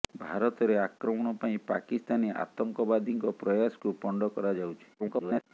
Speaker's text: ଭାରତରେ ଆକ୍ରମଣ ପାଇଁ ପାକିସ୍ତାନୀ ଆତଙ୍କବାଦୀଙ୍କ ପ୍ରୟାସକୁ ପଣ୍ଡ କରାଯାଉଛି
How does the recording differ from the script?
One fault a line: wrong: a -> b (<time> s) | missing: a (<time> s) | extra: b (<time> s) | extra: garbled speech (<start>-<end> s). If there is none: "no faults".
extra: garbled speech (5.0-5.4 s)